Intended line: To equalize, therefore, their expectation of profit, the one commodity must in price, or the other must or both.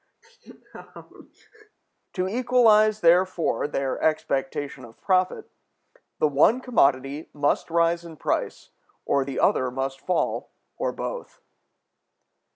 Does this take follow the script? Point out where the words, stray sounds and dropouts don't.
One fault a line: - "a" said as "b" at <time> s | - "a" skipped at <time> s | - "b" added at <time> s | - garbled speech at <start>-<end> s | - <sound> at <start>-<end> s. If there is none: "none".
- laugh at 0.2-1.8 s
- "rise" added at 7.7 s
- "fall" added at 10.0 s